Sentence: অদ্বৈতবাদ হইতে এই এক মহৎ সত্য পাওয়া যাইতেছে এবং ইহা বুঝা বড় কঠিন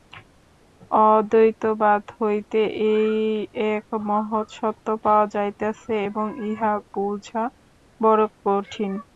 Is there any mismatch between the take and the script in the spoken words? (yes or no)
no